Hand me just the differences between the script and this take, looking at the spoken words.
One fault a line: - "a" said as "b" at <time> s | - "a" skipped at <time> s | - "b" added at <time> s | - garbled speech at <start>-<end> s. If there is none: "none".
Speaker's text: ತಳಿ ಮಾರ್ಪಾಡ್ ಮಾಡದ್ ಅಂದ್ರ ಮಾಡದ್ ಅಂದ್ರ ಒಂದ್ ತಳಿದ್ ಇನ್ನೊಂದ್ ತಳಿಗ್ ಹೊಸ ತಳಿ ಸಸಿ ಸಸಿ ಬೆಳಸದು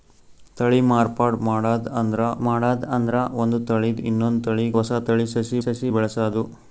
none